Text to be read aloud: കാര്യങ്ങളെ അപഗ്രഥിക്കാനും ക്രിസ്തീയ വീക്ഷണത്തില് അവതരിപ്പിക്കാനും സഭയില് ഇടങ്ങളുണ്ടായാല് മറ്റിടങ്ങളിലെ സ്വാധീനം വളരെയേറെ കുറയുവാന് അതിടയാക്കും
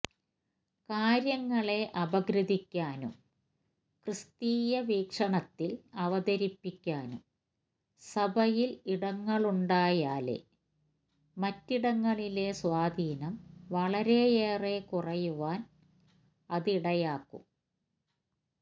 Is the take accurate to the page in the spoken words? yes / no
yes